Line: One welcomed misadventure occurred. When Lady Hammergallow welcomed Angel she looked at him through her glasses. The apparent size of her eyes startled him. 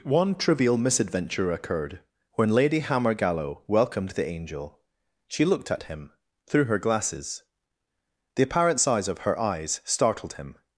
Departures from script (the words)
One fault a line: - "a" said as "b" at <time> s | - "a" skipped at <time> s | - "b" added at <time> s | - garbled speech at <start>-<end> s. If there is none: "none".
- "welcomed" said as "trivial" at 0.3 s
- "the" added at 4.1 s